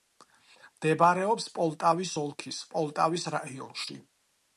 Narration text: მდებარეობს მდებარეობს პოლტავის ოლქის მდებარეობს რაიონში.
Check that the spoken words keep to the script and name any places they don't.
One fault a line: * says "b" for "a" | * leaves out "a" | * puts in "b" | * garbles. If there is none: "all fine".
* leaves out "მდებარეობს"
* says "პოლტავის" for "მდებარეობს"